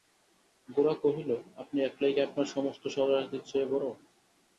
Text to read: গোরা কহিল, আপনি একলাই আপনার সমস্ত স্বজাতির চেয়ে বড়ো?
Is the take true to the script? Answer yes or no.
yes